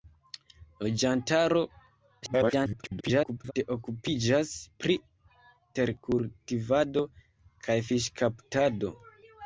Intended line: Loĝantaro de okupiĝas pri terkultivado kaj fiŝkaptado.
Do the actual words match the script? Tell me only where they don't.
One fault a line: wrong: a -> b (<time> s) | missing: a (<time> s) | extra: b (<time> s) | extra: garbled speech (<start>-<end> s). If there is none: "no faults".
extra: garbled speech (2.2-3.5 s)